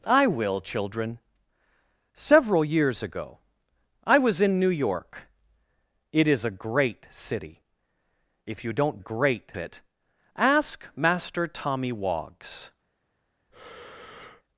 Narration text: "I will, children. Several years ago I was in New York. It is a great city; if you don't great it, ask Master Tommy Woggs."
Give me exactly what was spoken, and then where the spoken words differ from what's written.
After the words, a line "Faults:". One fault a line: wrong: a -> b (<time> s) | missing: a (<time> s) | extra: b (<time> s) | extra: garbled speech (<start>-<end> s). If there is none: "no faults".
"I will, children. Several years ago I was in New York. It is a great city; if you don't great it, ask Master Tommy Woggs."
Faults:
no faults